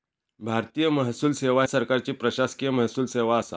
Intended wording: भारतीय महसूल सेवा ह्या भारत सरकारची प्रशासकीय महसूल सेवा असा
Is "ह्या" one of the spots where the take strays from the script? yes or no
yes